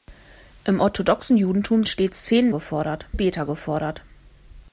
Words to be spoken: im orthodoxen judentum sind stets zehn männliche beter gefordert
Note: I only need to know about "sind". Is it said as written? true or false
false